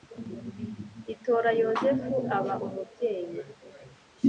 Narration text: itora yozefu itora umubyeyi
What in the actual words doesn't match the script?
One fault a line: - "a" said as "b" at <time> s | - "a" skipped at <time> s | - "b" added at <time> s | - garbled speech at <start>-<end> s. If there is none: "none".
- "itora" said as "aba" at 2.4 s